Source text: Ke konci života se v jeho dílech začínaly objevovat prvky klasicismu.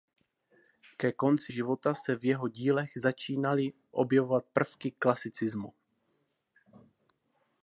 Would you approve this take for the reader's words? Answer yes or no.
yes